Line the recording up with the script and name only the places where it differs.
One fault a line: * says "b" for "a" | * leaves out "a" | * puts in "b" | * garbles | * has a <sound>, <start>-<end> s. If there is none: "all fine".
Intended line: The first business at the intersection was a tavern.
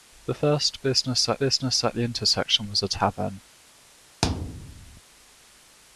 * puts in "business at"
* has a thud, 4.2-5.0 s